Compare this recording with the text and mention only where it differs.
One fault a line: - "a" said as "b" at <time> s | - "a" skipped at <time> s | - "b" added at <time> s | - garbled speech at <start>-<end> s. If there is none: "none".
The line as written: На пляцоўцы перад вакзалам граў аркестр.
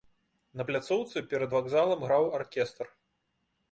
none